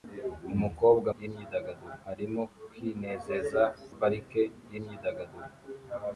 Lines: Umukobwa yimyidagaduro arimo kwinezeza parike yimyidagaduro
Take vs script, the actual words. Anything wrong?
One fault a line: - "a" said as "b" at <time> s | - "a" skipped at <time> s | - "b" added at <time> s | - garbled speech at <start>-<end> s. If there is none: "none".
none